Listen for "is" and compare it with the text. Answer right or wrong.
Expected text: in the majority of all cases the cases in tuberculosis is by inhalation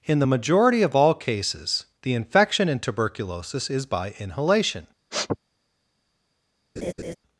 right